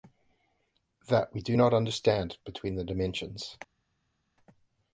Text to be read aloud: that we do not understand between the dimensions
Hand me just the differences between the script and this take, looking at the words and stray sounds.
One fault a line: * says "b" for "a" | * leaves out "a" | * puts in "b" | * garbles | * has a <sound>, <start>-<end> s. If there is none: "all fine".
all fine